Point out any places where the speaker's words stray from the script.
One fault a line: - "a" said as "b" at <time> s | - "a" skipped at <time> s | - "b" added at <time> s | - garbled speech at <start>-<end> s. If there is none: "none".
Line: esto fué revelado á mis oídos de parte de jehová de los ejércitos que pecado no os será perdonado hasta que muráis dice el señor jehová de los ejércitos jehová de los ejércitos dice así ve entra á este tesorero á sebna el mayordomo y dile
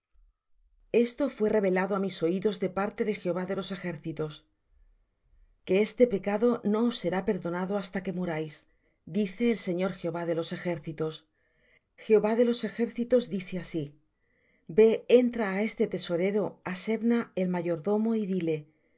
- "este" added at 5.9 s